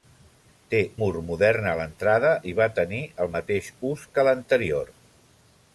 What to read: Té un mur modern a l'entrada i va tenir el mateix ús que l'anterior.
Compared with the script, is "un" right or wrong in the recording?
wrong